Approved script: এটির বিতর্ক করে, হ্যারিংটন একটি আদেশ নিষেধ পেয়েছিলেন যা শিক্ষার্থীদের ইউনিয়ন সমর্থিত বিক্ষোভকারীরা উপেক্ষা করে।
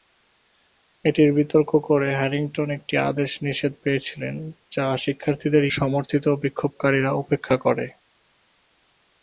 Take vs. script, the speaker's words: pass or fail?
fail